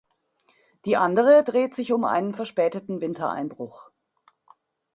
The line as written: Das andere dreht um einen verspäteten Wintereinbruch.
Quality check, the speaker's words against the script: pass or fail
fail